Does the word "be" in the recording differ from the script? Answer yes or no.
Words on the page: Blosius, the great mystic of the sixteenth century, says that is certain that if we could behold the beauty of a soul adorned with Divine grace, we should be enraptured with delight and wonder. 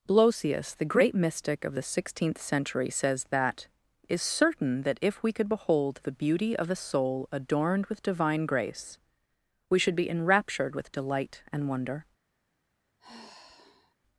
no